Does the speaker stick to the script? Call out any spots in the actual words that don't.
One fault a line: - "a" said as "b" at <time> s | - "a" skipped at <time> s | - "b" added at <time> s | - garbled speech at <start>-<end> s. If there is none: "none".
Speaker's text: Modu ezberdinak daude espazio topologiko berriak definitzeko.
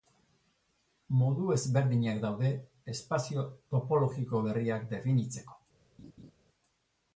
none